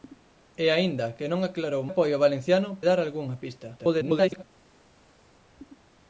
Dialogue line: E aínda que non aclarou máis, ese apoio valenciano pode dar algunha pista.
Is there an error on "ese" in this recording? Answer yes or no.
yes